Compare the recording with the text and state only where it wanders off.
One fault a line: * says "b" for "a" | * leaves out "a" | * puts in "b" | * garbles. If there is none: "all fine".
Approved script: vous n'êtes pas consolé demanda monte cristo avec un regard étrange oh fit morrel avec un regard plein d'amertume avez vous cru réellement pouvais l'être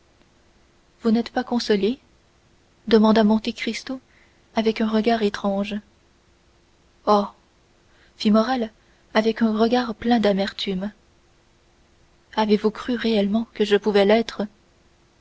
* puts in "que je"